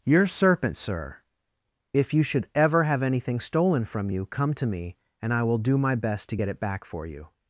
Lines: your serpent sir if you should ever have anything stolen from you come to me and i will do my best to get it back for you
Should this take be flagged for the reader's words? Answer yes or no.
no